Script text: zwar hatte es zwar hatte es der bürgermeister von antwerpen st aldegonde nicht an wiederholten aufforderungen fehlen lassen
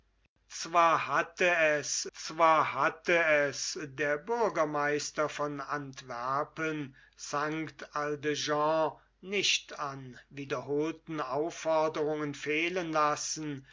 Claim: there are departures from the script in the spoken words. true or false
false